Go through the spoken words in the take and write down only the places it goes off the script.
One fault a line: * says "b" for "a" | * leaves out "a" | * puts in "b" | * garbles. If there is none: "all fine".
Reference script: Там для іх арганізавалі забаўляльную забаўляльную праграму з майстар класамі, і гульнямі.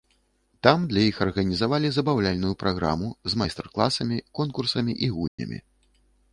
* leaves out "забаўляльную"
* puts in "конкурсамі"